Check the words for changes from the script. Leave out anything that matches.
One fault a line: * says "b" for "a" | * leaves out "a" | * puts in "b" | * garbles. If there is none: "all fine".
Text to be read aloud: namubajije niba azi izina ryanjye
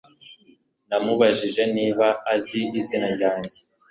all fine